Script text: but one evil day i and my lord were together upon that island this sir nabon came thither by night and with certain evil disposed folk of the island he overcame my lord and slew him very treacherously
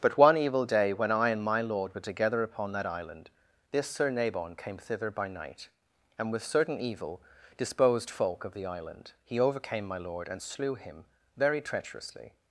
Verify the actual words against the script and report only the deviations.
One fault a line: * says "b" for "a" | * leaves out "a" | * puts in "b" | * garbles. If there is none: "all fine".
* puts in "when"